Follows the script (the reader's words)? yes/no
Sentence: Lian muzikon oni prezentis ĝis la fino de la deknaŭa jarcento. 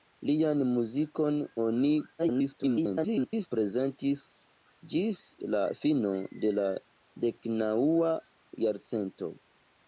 no